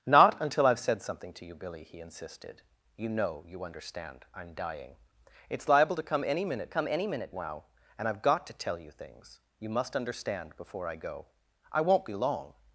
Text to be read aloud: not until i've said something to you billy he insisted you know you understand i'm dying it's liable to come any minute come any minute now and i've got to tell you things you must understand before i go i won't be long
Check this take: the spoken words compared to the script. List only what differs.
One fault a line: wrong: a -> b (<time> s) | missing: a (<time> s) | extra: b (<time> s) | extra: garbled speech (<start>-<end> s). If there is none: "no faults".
no faults